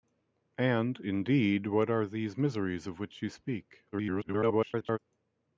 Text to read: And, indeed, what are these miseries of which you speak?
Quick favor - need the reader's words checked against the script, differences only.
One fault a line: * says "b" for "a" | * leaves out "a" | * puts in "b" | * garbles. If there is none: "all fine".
* garbles